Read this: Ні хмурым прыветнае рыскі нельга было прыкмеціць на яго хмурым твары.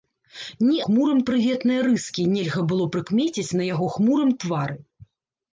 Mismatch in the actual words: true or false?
false